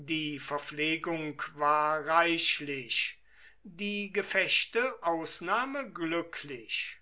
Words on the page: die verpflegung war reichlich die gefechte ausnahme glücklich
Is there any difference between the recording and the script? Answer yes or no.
no